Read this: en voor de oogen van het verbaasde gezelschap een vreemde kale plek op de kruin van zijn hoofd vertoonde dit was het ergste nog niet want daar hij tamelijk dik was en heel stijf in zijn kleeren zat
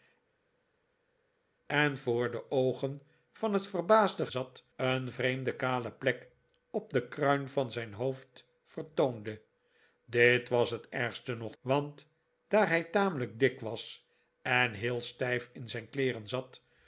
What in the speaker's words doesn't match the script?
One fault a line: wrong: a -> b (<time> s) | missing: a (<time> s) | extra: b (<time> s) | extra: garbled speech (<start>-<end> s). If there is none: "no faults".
wrong: gezelschap -> zat (4.3 s)
missing: niet (11.6 s)